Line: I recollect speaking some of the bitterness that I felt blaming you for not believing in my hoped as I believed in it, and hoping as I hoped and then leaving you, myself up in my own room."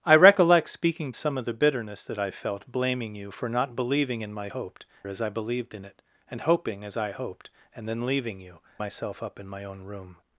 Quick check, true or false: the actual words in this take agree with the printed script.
true